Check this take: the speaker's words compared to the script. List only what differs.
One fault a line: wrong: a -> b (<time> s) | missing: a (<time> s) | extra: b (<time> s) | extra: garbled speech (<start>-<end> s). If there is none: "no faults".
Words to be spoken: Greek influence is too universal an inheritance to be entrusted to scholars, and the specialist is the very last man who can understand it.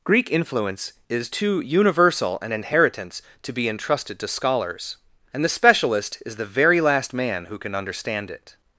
no faults